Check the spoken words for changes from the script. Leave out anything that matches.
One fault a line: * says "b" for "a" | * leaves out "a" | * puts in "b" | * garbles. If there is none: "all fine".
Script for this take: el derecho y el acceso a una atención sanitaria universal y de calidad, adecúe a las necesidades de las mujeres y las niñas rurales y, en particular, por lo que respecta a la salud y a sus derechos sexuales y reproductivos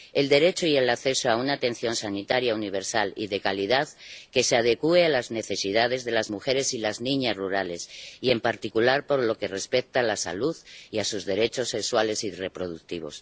* puts in "que se"